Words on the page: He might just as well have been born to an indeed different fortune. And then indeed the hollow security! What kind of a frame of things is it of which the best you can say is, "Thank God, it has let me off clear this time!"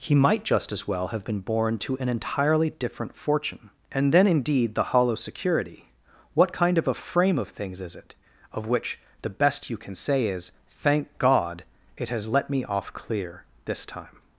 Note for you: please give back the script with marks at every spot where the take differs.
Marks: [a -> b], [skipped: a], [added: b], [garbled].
He might just as well have been born to an [indeed -> entirely] different fortune. And then indeed the hollow security! What kind of a frame of things is it of which the best you can say is, "Thank God, it has let me off clear this time!"